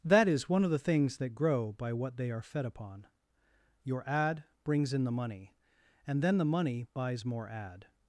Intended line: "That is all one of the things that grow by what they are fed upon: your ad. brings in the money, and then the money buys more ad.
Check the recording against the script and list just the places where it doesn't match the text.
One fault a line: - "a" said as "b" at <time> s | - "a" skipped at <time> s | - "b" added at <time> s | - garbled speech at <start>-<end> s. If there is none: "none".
- "all" skipped at 0.5 s